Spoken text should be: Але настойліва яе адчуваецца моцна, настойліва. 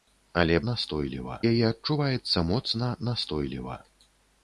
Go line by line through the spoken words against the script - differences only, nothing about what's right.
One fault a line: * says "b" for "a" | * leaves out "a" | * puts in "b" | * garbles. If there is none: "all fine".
all fine